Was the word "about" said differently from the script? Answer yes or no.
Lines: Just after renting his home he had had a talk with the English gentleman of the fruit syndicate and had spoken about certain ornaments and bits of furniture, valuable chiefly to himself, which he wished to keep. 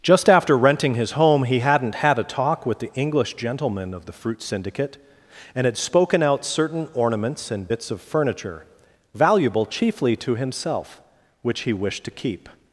yes